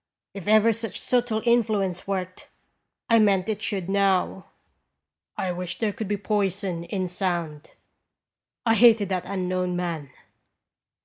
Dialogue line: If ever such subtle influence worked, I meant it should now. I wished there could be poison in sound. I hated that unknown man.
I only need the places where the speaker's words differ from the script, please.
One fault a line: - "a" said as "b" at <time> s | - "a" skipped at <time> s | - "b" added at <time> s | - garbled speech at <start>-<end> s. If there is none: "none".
none